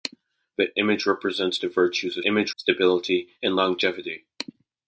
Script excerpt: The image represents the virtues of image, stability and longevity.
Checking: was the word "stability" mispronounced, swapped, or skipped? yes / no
no